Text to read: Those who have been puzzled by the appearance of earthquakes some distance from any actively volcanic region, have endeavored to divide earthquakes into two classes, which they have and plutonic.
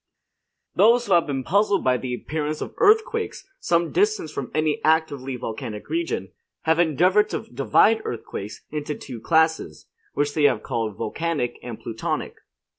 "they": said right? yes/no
yes